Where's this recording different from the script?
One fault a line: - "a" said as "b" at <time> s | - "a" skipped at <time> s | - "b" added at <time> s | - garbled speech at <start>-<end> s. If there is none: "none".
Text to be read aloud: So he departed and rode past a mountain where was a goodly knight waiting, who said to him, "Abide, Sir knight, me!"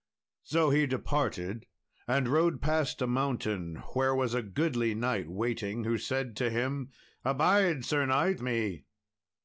none